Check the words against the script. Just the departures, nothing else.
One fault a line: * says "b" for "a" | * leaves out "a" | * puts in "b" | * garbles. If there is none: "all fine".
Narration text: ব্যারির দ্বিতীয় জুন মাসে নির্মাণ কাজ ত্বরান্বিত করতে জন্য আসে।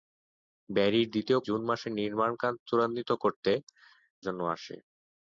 all fine